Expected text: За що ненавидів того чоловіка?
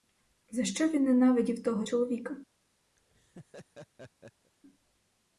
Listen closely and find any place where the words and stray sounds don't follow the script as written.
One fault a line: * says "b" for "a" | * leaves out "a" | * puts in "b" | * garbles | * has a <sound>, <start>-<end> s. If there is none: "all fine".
* puts in "він"
* has a laugh, 3.0-4.5 s